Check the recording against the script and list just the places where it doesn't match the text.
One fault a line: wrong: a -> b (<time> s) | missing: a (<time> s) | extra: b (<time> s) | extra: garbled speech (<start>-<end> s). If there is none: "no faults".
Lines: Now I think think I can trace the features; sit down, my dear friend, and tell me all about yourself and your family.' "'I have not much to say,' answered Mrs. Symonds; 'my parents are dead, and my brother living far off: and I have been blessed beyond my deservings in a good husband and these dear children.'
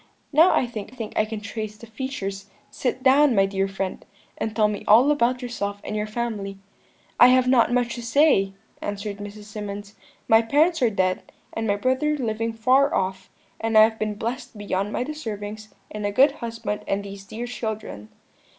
no faults